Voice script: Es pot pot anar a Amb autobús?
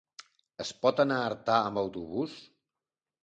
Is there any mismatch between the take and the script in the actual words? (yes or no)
yes